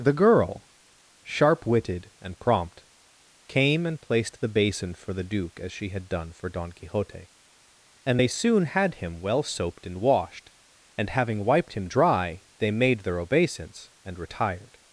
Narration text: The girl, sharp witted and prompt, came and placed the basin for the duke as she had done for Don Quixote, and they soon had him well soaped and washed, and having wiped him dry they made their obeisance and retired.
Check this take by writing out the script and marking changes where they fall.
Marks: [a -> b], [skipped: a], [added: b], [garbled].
The girl, sharp witted and prompt, came and placed the basin for the duke as she had done for Don Quixote, and they soon had him well soaped and washed, and having wiped him dry they made their obeisance and retired.